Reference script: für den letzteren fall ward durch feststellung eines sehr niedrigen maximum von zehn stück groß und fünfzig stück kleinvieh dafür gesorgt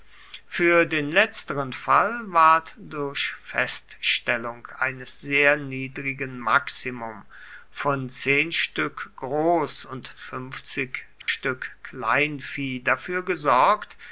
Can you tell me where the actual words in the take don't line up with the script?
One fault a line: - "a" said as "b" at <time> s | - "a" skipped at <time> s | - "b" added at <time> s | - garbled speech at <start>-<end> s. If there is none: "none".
none